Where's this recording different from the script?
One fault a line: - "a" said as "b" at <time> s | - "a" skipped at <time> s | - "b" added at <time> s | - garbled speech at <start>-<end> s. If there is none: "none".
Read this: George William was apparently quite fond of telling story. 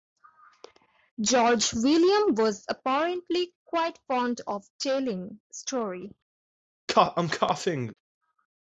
none